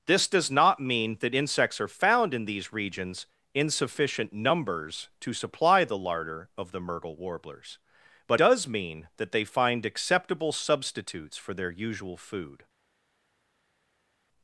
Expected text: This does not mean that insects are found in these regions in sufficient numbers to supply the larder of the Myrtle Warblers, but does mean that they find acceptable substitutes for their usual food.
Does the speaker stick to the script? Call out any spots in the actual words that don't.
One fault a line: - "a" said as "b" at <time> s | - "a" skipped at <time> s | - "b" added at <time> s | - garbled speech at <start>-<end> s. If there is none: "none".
none